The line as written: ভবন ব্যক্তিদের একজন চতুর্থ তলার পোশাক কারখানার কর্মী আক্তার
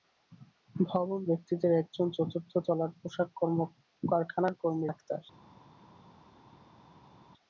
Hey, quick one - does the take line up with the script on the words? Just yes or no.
yes